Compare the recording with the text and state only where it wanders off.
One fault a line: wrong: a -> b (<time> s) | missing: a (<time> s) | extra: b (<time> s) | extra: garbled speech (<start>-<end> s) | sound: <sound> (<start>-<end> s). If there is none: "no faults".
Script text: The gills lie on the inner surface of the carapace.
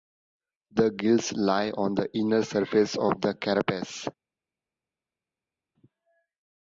no faults